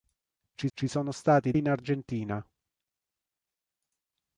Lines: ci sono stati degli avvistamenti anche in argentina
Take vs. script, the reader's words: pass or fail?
fail